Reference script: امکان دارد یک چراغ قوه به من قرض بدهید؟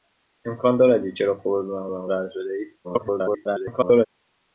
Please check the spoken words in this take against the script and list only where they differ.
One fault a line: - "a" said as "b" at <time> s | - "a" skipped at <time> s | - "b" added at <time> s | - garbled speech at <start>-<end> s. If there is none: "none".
- "من" added at 1.9 s
- garbled speech at 2.8-4.1 s